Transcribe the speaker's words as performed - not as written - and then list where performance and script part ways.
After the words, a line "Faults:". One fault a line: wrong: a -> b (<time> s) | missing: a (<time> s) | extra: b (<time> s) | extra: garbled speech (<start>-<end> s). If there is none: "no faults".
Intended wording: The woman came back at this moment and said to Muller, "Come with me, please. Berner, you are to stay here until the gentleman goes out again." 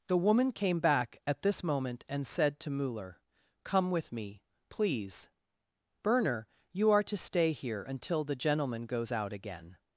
The woman came back at this moment and said to Muller, "Come with me, please. Berner, you are to stay here until the gentleman goes out again."
Faults:
no faults